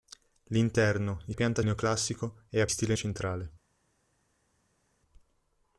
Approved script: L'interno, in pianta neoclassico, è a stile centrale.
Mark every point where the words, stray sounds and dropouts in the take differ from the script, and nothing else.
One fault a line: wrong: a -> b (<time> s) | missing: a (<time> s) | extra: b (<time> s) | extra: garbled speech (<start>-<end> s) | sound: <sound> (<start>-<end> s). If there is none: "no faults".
no faults